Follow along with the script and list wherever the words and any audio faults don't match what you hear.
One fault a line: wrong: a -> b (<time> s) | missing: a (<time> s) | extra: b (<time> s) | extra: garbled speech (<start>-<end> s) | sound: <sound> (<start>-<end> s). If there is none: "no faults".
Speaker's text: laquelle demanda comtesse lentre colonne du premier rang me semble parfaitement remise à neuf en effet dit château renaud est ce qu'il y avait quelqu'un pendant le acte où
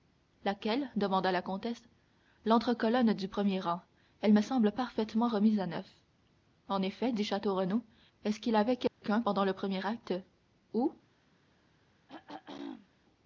extra: la (1.3 s)
extra: elle (4.2 s)
sound: dropout (8.9-9.0 s)
extra: premier (9.5 s)
sound: throat clearing (12.1-12.9 s)